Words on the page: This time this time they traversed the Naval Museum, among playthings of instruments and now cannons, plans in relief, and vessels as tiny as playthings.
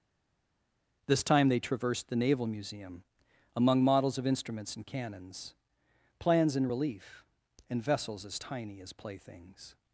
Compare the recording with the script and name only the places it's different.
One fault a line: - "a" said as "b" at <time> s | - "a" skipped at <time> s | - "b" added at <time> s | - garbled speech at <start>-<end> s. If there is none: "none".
- "this time" skipped at 1.5 s
- "playthings" said as "models" at 3.8 s
- "now" skipped at 4.8 s